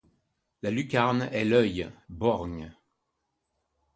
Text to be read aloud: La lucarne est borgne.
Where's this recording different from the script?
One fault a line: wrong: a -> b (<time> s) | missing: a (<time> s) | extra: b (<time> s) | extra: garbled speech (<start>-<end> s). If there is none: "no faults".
extra: l'œil (1.4 s)